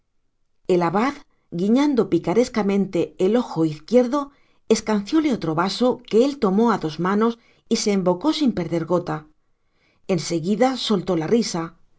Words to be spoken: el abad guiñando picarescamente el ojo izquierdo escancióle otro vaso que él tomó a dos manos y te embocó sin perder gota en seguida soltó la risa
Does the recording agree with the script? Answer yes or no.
no